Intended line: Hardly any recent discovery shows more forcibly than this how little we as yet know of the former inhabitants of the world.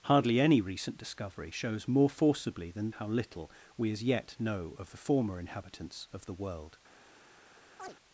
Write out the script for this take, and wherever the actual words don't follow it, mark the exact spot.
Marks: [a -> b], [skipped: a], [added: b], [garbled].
Hardly any recent discovery shows more forcibly than [skipped: this] how little we as yet know of the former inhabitants of the world.